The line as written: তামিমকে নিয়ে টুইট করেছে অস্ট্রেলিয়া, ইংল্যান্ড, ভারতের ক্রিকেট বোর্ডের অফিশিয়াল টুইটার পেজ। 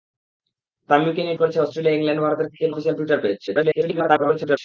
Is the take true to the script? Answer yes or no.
no